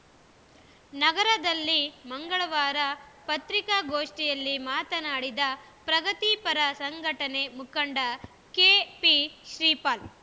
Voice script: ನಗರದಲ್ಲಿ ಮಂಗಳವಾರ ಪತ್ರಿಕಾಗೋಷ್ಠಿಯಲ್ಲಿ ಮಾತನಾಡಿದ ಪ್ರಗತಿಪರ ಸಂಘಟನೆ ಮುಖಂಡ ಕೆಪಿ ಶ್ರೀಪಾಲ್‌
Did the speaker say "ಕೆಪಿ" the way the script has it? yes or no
yes